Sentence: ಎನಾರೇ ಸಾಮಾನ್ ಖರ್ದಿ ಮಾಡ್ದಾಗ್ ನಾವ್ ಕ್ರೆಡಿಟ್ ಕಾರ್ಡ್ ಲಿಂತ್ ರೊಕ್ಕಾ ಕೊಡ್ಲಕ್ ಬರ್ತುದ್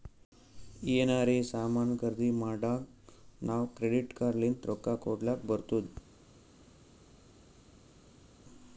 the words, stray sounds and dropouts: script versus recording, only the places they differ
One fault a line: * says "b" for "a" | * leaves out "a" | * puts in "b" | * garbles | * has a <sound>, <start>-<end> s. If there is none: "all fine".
all fine